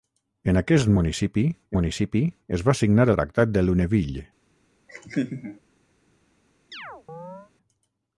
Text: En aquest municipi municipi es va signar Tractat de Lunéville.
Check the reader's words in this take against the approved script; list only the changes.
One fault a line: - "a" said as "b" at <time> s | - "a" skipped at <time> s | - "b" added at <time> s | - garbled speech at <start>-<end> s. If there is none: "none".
none